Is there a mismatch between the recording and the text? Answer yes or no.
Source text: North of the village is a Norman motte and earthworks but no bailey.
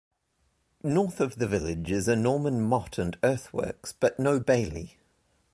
no